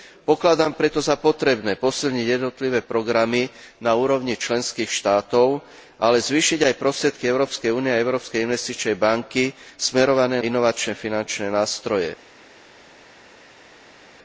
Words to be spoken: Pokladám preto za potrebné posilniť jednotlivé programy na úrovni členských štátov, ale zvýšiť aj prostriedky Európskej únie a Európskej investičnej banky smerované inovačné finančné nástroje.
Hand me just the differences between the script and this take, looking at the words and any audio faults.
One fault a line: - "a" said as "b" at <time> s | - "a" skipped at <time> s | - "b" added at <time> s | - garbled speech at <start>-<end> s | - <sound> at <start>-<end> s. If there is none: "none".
none